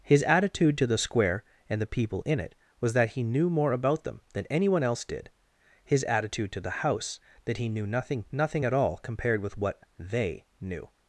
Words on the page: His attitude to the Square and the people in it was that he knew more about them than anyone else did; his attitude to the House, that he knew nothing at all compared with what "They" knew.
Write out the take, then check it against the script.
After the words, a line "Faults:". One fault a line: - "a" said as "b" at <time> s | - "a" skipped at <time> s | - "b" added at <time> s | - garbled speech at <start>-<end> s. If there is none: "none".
His attitude to the Square and the people in it was that he knew more about them than anyone else did; his attitude to the House, that he knew nothing nothing at all compared with what "They" knew.
Faults:
- "nothing" added at 8.3 s